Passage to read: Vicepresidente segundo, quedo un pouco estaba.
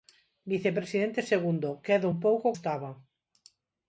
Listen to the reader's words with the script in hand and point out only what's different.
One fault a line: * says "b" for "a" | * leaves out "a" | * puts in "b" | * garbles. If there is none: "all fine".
all fine